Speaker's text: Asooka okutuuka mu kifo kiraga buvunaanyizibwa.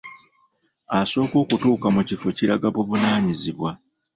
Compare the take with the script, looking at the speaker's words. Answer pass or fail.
pass